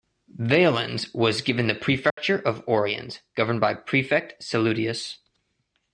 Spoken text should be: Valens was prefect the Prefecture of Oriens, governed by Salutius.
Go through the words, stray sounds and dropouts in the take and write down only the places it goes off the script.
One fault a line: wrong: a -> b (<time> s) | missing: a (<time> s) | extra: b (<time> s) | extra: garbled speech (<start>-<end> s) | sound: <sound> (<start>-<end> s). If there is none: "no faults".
wrong: prefect -> given (1.4 s)
sound: dropout (2.1-2.2 s)
extra: prefect (3.8 s)